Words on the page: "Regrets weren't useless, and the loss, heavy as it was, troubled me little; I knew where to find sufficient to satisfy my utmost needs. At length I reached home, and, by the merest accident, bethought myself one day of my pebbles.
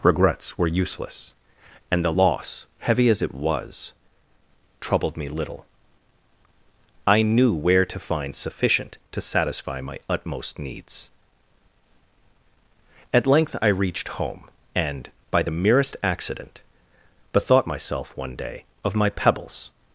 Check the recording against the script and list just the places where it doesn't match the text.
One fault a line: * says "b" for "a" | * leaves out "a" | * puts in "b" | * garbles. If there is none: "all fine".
* says "were" for "weren't"